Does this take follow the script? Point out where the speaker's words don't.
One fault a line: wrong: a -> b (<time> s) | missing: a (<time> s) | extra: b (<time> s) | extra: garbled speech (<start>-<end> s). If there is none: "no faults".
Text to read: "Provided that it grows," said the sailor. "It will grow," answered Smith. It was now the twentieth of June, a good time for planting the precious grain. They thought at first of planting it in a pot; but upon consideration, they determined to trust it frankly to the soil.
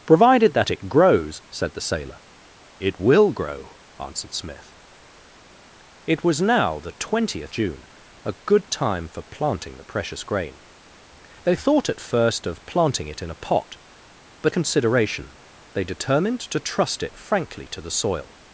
missing: of (7.5 s)
missing: upon (14.5 s)